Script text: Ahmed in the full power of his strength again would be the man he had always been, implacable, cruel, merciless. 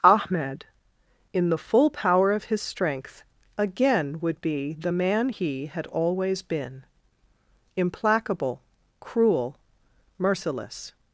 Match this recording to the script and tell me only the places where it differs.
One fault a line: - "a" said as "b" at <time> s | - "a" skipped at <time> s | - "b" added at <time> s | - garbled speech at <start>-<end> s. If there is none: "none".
none